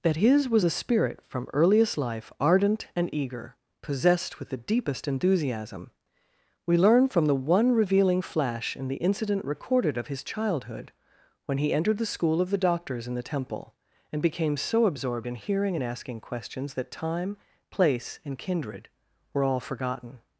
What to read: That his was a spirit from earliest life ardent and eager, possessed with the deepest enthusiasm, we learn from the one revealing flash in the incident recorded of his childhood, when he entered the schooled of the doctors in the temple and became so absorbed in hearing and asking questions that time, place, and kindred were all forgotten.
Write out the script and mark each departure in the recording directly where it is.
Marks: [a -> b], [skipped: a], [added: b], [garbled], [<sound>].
That his was a spirit from earliest life ardent and eager, possessed with the deepest enthusiasm, we learn from the one revealing flash in the incident recorded of his childhood, when he entered the [schooled -> school] of the doctors in the temple and became so absorbed in hearing and asking questions that time, place, and kindred were all forgotten.